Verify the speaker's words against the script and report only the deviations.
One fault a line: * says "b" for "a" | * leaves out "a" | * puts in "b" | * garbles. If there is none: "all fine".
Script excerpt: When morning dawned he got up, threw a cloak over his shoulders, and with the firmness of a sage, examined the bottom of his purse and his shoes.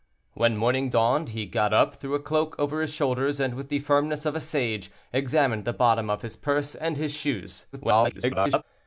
* garbles